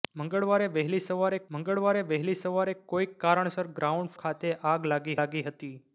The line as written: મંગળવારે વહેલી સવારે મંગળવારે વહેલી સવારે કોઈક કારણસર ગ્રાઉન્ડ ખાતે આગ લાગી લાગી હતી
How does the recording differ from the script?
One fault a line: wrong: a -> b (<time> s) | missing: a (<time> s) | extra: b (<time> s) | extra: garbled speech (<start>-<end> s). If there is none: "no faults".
no faults